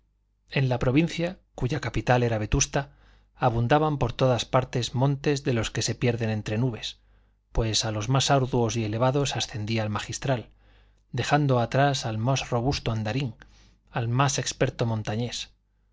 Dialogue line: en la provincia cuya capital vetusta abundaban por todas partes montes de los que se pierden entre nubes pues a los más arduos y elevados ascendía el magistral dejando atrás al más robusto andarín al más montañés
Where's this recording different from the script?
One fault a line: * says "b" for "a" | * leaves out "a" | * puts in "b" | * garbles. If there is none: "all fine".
* puts in "era"
* puts in "experto"